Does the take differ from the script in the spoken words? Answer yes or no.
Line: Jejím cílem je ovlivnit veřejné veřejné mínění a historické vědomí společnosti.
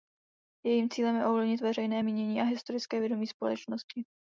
yes